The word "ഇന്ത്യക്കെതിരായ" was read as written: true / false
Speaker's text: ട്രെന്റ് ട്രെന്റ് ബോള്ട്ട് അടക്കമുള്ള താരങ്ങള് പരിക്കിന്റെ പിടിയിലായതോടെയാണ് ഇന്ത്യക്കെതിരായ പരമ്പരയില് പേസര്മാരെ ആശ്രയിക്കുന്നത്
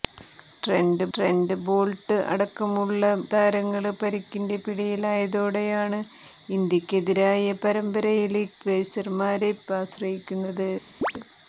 true